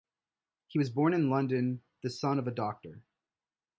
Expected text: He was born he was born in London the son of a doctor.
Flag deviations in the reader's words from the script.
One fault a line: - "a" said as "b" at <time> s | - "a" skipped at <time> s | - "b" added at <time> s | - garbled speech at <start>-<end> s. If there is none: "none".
- "he was born" skipped at 1.1 s